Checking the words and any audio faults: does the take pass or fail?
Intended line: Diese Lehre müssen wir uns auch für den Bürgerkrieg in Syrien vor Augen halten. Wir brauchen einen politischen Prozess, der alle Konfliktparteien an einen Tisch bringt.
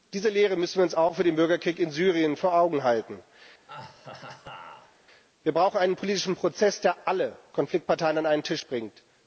fail